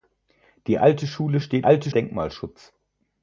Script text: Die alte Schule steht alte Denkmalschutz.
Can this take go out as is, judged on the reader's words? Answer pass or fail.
pass